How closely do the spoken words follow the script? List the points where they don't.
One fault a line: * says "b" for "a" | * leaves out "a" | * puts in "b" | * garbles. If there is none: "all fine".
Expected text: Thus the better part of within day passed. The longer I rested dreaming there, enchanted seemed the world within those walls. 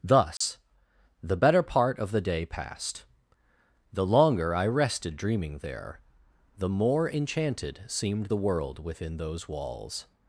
* says "the" for "within"
* puts in "the more"